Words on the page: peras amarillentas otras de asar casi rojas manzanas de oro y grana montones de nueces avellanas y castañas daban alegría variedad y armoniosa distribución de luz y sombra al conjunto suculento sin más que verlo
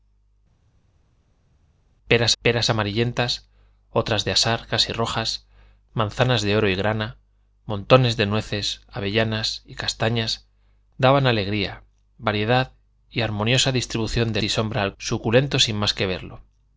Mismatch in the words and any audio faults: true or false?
true